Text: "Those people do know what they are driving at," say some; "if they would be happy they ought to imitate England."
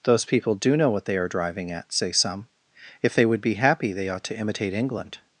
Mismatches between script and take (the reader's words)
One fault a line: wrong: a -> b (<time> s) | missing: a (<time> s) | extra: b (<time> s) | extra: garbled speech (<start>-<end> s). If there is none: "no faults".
no faults